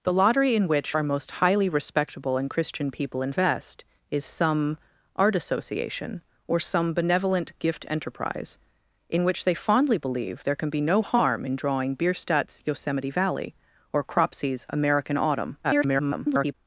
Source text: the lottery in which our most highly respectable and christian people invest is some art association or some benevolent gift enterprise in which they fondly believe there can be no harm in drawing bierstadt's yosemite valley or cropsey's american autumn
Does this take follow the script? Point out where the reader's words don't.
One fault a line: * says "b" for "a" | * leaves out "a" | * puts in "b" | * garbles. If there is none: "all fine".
* garbles